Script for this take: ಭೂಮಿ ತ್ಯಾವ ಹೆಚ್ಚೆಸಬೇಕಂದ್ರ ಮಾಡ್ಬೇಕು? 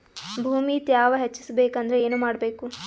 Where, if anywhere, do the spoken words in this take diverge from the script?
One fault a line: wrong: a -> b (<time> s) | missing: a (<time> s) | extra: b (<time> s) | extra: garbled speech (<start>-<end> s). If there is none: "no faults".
extra: ಏನು (2.1 s)